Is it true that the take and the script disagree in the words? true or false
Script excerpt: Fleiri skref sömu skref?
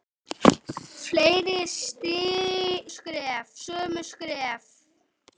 false